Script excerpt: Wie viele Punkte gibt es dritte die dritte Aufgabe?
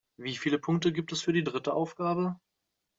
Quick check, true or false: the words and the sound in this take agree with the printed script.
false